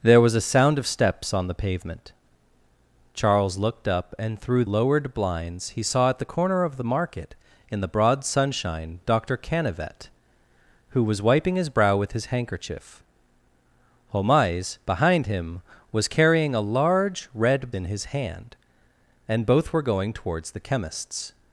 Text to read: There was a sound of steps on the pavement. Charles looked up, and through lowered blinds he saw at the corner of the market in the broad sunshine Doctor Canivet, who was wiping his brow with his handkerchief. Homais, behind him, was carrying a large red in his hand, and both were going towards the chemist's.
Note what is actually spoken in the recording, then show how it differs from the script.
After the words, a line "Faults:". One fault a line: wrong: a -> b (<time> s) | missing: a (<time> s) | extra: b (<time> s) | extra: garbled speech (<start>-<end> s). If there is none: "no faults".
There was a sound of steps on the pavement. Charles looked up, and through lowered blinds he saw at the corner of the market in the broad sunshine Doctor Canivet, who was wiping his brow with his handkerchief. Homais, behind him, was carrying a large red in his hand, and both were going towards the chemist's.
Faults:
no faults